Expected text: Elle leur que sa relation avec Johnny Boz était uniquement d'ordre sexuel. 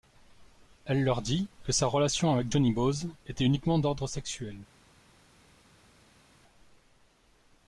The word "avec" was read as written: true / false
true